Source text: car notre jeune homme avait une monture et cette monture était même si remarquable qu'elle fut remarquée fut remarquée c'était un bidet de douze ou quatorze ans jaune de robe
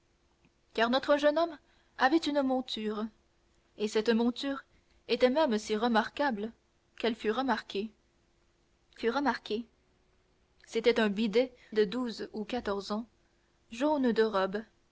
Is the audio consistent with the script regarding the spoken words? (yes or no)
yes